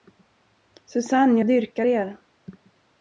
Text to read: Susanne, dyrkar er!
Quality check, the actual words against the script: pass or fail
fail